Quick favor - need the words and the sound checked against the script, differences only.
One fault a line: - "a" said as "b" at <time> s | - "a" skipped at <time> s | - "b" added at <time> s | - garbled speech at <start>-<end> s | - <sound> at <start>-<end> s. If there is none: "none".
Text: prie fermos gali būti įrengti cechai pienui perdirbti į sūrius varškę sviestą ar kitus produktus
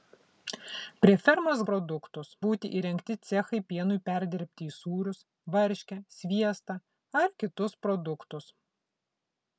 - "gali" said as "produktus" at 1.7 s